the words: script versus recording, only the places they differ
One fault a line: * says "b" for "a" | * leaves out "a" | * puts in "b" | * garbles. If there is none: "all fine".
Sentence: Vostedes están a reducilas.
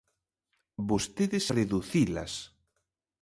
* leaves out "están a"